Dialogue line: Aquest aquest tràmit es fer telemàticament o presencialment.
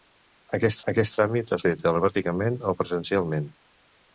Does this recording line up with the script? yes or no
yes